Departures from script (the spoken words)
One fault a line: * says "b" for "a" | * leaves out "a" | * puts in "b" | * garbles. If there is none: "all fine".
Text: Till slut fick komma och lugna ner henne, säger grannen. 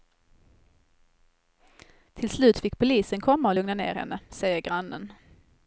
* puts in "polisen"